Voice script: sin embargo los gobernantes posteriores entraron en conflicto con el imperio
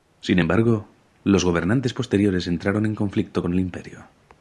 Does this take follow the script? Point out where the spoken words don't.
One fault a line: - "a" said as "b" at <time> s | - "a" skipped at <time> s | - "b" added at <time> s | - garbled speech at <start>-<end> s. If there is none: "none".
none